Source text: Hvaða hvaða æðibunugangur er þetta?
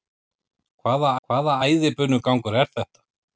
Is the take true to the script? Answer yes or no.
yes